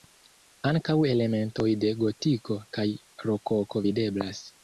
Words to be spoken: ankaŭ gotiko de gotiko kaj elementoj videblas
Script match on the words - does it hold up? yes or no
no